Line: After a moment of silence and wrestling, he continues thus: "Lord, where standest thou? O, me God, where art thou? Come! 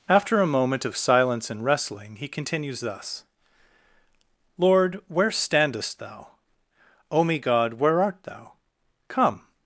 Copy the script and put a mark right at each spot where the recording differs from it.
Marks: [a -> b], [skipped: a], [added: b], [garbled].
After a moment of silence and wrestling, he continues thus: "Lord, where standest thou? O, me God, where art thou? Come!